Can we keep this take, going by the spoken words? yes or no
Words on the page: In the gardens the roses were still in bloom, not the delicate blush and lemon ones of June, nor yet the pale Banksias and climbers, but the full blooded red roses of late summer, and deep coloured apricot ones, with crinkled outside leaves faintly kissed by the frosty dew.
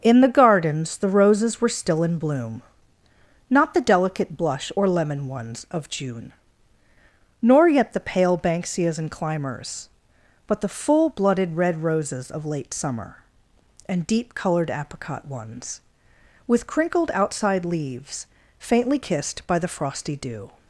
no